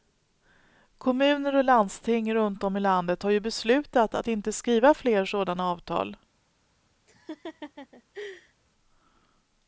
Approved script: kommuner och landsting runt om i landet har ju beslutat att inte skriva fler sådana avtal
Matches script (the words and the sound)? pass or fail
fail